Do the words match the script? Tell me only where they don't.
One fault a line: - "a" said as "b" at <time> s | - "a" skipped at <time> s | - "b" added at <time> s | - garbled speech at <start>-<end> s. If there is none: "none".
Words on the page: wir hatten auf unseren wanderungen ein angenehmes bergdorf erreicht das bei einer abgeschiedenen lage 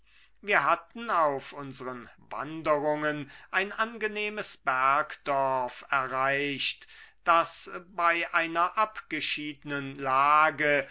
none